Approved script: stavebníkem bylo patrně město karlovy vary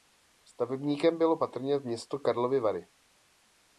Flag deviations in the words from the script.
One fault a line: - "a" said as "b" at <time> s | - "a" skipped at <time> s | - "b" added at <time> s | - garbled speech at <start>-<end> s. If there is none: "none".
none